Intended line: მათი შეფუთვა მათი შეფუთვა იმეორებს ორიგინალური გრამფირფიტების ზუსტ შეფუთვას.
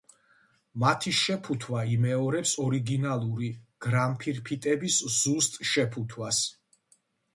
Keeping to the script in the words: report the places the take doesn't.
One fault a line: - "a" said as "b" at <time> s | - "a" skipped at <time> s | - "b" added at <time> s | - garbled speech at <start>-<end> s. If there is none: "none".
- "მათი შეფუთვა" skipped at 1.8 s